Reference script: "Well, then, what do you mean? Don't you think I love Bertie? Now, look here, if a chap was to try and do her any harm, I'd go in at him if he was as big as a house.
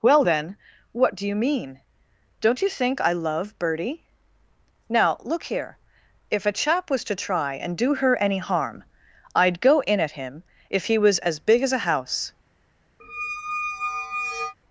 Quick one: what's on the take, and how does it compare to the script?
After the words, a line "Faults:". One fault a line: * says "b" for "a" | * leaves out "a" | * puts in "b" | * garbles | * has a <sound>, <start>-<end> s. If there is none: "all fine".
"Well, then, what do you mean? Don't you think I love Bertie? Now, look here, if a chap was to try and do her any harm, I'd go in at him if he was as big as a house.
Faults:
* has a squeak, 13.0-14.5 s